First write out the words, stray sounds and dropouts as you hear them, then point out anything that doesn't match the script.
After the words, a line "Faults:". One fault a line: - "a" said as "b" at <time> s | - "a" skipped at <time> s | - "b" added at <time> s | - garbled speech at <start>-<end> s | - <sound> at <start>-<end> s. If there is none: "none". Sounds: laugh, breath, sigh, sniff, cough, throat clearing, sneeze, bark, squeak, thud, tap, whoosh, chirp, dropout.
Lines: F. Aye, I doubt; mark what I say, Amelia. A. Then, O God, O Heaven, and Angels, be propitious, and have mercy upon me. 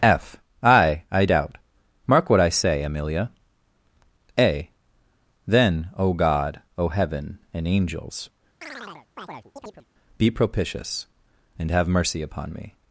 F. Aye, I doubt; mark what I say, Amelia. A. Then, O God, O Heaven, and Angels, be propitious, and have mercy upon me.
Faults:
- chirp at 8.6-9.9 s